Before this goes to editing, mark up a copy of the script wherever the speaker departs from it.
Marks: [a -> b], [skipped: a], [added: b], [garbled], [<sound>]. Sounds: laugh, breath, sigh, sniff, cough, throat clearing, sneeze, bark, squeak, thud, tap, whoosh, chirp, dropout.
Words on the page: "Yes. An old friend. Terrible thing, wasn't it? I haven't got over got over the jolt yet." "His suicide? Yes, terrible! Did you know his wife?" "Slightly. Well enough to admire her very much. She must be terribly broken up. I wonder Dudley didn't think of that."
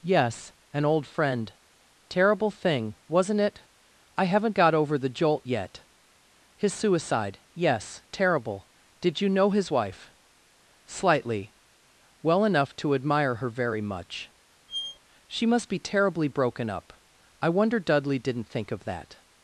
"Yes. An old friend. Terrible thing, wasn't it? I haven't got over [skipped: got over] the jolt yet." "His suicide? Yes, terrible! Did you know his wife?" "Slightly. Well enough to admire her very much. [squeak] She must be terribly broken up. I wonder Dudley didn't think of that."